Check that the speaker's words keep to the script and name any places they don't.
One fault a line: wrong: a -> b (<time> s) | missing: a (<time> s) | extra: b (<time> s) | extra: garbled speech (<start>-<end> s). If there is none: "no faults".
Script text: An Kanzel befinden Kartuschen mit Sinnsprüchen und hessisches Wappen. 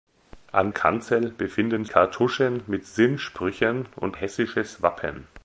no faults